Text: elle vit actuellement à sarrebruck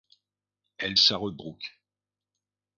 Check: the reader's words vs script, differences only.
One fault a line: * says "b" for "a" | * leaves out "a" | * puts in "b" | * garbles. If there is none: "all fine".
* leaves out "vit actuellement à"